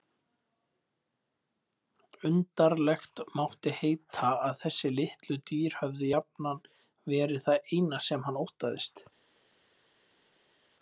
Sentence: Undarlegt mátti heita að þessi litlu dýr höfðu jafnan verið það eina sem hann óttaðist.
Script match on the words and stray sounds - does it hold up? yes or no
yes